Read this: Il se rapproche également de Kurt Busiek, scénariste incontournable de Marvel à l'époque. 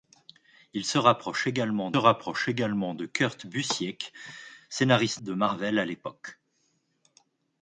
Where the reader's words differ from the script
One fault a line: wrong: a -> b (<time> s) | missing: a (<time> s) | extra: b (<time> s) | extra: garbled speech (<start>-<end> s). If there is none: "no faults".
extra: rapproche également (2.0 s)
missing: incontournable (5.2 s)